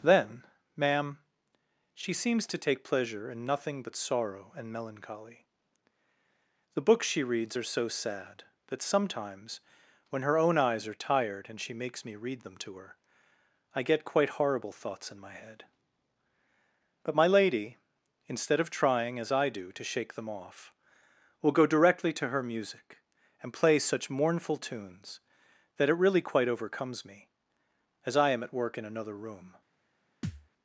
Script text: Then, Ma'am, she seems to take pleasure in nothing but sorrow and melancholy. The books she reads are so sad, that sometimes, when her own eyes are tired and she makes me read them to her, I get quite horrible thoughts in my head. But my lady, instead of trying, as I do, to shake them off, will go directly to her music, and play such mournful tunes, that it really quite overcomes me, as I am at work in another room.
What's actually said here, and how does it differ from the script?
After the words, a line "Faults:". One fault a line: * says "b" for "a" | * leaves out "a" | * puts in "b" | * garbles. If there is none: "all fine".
Then, Ma'am, she seems to take pleasure in nothing but sorrow and melancholy. The books she reads are so sad, that sometimes, when her own eyes are tired and she makes me read them to her, I get quite horrible thoughts in my head. But my lady, instead of trying, as I do, to shake them off, will go directly to her music, and play such mournful tunes, that it really quite overcomes me, as I am at work in another room.
Faults:
all fine